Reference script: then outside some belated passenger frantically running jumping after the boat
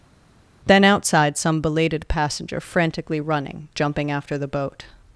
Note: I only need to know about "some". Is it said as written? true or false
true